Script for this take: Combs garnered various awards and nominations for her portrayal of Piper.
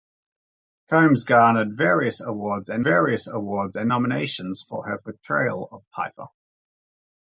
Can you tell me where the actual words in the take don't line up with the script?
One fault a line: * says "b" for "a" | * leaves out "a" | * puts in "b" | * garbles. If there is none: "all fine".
* puts in "various awards and"